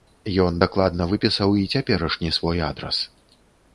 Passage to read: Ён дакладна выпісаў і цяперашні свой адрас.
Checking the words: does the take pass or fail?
pass